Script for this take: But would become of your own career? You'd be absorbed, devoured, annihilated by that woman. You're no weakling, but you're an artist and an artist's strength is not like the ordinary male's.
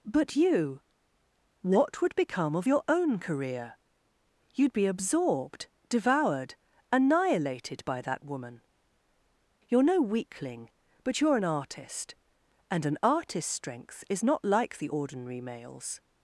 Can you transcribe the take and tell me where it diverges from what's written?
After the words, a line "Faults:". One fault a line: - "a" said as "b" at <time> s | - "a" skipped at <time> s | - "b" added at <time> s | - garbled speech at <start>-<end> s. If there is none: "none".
But you what would become of your own career? You'd be absorbed, devoured, annihilated by that woman. You're no weakling, but you're an artist and an artist's strength is not like the ordinary male's.
Faults:
- "you what" added at 0.3 s